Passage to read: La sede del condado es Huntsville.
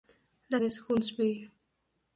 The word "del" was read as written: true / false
false